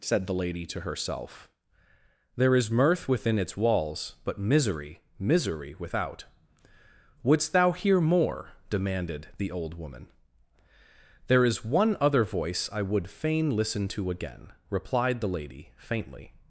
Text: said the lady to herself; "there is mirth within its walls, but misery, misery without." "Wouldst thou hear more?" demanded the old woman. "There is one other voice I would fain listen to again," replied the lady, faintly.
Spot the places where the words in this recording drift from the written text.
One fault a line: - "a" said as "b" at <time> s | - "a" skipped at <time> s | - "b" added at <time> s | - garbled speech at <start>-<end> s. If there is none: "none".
none